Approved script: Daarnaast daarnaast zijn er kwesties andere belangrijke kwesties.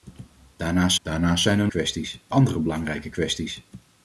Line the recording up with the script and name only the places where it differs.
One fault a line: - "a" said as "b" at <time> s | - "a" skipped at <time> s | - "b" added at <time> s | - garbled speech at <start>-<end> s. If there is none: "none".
none